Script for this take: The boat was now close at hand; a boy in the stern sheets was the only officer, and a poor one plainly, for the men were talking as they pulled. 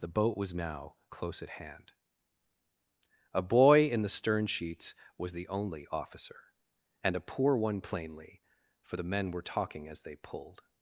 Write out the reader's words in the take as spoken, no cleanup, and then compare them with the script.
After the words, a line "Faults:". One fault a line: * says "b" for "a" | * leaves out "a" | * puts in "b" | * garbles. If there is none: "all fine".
The boat was now close at hand; a boy in the stern sheets was the only officer, and a poor one plainly, for the men were talking as they pulled.
Faults:
all fine